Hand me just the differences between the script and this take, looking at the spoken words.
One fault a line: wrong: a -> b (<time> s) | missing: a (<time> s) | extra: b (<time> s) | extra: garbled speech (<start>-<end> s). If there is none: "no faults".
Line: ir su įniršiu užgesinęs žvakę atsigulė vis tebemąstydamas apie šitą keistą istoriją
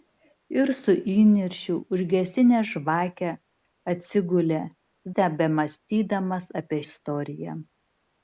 missing: vis (4.6 s)
missing: šitą keistą (6.8 s)